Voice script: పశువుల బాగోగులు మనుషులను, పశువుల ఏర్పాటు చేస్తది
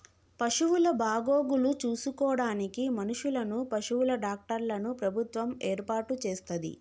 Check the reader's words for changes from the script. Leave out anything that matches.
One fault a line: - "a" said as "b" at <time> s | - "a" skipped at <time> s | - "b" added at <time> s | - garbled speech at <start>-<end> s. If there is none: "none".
- "చూసుకోడానికి" added at 1.8 s
- "డాక్టర్లను ప్రభుత్వం" added at 4.2 s